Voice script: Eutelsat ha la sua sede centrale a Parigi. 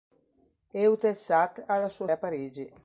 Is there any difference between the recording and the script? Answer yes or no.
yes